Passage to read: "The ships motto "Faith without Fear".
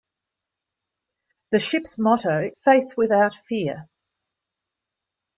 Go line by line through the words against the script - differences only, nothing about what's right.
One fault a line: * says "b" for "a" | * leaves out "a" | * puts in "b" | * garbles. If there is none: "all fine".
all fine